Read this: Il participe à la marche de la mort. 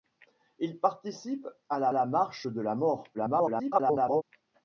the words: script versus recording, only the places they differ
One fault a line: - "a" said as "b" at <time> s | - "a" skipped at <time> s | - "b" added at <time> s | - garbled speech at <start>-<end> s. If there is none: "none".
- "la" added at 1.9 s
- garbled speech at 3.1-4.2 s